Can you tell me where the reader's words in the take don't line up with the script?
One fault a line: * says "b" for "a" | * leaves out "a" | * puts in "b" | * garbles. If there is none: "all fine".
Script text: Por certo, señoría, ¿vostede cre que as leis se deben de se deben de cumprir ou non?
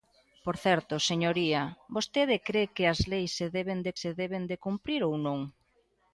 all fine